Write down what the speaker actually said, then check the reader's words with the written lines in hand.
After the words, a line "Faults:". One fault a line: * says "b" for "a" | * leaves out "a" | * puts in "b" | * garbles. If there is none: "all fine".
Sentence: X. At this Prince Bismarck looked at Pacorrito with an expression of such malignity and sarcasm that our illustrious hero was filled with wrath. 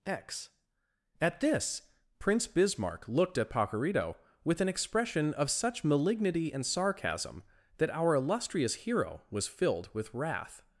X. At this Prince Bismarck looked at Pacorrito with an expression of such malignity and sarcasm that our illustrious hero was filled with wrath.
Faults:
all fine